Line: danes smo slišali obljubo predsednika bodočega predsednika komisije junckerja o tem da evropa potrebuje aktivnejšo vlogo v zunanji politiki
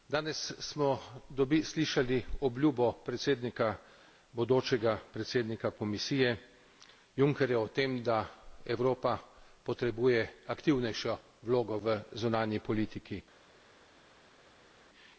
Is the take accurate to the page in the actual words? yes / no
yes